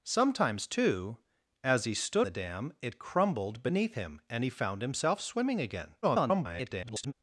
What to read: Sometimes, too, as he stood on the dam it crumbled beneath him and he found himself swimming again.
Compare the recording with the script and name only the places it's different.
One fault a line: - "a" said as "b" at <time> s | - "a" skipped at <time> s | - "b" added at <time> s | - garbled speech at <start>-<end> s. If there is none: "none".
- "on" skipped at 2.3 s
- garbled speech at 6.0-7.1 s